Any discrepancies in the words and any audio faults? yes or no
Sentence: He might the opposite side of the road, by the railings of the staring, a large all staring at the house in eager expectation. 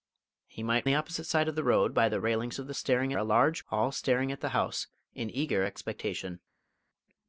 no